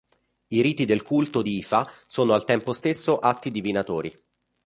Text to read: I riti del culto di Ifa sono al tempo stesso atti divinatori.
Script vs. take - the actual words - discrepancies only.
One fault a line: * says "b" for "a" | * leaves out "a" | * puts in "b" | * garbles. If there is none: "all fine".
all fine